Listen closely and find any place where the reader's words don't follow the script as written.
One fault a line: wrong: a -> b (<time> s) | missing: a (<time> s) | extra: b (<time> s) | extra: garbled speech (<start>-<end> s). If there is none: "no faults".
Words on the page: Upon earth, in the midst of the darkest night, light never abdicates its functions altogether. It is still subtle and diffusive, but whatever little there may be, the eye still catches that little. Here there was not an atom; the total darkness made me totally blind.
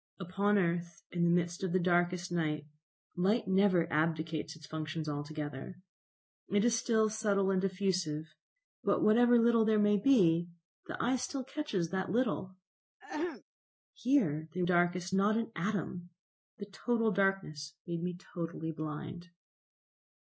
wrong: was -> darkest (14.6 s)